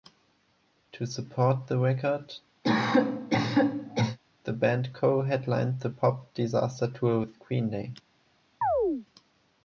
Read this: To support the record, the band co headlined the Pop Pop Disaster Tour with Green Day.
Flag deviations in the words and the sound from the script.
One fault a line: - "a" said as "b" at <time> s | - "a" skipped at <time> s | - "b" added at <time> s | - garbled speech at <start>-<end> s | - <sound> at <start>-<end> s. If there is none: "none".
- cough at 2.6-4.2 s
- "Pop" skipped at 6.3 s
- chirp at 8.6-9.1 s